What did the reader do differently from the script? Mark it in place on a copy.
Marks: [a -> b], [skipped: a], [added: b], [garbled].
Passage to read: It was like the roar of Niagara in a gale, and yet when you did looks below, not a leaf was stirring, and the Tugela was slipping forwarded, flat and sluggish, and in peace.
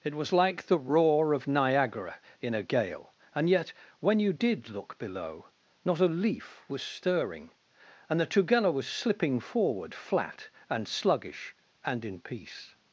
It was like the roar of Niagara in a gale, and yet when you did [looks -> look] below, not a leaf was stirring, and the Tugela was slipping [forwarded, -> forward] flat and sluggish, and in peace.